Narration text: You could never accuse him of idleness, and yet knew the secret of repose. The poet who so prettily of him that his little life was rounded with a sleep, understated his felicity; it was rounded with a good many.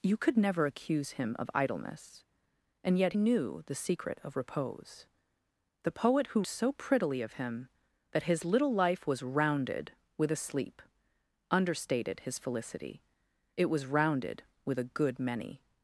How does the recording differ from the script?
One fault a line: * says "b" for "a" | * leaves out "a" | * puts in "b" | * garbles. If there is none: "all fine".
all fine